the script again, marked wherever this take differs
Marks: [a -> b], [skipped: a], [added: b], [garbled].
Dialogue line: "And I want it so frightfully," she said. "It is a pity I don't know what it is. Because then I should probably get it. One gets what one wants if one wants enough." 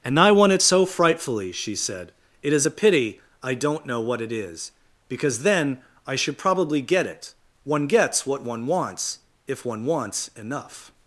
"And I want it so frightfully," she said. "It is a pity I don't know what it is. Because then I should probably get it. One gets what one wants if one wants enough."